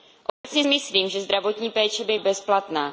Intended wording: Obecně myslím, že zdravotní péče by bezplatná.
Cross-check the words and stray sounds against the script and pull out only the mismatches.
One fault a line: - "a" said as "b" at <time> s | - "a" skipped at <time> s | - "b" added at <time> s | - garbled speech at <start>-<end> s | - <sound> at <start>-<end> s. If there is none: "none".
- dropout at 0.3-0.4 s